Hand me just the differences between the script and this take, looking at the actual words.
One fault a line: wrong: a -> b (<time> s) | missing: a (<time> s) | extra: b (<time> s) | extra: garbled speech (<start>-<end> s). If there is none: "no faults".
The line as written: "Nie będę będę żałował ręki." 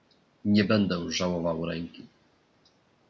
missing: będę (1.1 s)